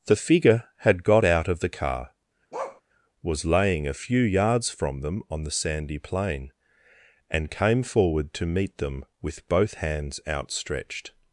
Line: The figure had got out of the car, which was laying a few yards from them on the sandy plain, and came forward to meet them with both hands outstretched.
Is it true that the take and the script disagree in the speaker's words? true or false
true